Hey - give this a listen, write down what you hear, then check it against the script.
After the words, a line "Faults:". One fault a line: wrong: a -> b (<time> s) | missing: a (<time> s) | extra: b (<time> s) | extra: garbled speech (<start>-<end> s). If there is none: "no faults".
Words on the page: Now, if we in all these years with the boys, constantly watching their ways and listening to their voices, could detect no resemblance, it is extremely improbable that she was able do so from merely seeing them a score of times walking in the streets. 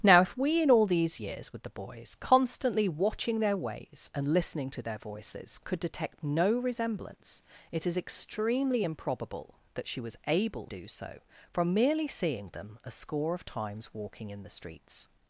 Now, if we in all these years with the boys, constantly watching their ways and listening to their voices, could detect no resemblance, it is extremely improbable that she was able do so from merely seeing them a score of times walking in the streets.
Faults:
no faults